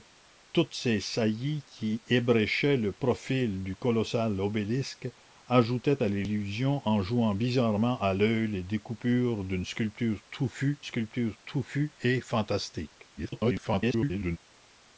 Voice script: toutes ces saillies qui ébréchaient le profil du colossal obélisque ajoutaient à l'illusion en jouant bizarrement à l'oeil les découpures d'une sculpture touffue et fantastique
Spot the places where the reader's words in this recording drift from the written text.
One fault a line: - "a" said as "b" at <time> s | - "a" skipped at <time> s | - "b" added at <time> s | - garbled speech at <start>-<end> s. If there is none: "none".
- "sculpture touffue" added at 10.8 s
- garbled speech at 13.2-14.4 s